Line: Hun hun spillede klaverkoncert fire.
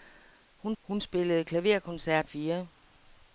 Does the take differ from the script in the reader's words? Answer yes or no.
no